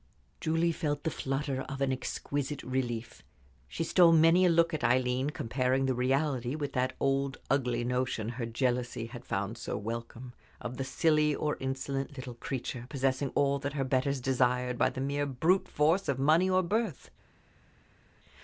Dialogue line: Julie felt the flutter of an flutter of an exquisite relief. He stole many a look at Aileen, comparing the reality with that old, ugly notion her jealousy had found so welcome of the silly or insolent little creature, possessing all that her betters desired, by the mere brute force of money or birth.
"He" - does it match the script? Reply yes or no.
no